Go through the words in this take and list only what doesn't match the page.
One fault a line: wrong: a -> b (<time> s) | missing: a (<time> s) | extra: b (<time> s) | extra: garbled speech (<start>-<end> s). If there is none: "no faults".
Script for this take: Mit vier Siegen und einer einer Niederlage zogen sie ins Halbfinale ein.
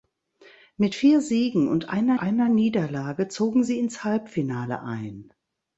no faults